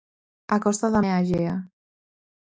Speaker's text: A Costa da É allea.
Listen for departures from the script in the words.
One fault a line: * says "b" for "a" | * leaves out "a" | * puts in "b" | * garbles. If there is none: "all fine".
all fine